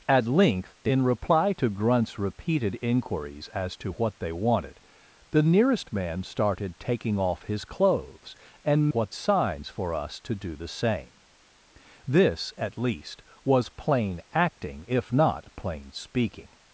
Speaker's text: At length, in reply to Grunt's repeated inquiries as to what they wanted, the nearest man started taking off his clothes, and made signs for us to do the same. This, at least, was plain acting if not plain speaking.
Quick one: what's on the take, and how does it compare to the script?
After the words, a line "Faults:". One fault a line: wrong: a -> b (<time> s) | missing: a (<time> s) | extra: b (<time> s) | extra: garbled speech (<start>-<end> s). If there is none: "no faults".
At length, in reply to Grunt's repeated inquiries as to what they wanted, the nearest man started taking off his clothes, and what signs for us to do the same. This, at least, was plain acting if not plain speaking.
Faults:
wrong: made -> what (8.9 s)